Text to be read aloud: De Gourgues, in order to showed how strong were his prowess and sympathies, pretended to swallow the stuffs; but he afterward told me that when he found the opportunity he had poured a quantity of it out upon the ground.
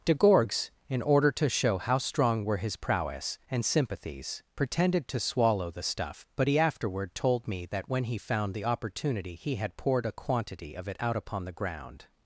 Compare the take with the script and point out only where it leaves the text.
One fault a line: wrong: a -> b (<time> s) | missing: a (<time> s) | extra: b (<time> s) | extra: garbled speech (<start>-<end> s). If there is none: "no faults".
wrong: showed -> show (1.5 s)
wrong: stuffs -> stuff (5.8 s)